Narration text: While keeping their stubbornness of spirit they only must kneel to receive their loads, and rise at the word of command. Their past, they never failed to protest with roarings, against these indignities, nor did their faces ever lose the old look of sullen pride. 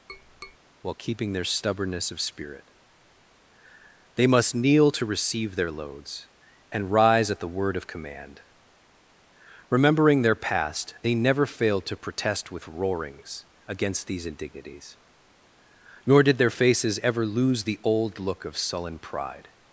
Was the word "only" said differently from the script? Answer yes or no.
yes